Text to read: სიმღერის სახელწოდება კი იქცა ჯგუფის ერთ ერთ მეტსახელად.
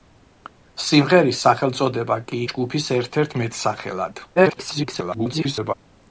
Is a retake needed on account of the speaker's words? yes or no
yes